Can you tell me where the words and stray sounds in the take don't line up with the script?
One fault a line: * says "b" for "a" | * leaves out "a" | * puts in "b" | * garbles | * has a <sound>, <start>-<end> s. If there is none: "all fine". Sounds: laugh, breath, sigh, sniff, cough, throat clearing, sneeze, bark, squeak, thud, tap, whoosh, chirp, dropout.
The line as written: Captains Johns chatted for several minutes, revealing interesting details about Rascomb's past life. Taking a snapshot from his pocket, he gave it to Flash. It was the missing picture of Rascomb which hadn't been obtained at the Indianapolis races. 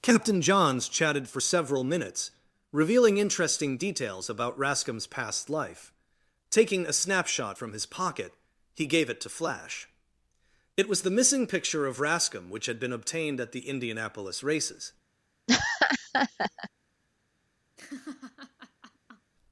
* says "Captain" for "Captains"
* says "had" for "hadn't"
* has a laugh, 15.5-16.7 s
* has a laugh, 17.8-19.3 s